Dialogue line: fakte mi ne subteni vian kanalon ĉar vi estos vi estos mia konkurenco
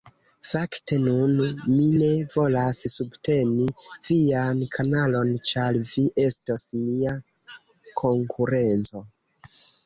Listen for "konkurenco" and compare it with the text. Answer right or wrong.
right